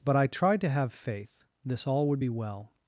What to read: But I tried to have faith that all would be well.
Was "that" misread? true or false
true